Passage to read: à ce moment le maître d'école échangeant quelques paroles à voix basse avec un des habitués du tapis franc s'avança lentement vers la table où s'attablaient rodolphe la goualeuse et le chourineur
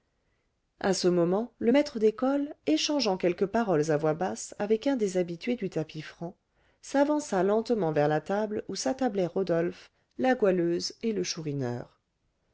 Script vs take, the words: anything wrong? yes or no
no